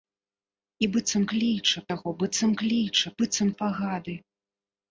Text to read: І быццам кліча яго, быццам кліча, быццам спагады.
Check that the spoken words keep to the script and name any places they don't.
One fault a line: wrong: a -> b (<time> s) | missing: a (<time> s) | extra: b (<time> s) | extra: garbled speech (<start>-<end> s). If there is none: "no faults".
no faults